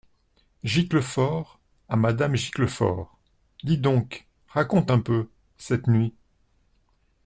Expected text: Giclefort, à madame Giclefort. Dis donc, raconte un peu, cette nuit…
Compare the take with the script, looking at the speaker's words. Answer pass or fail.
pass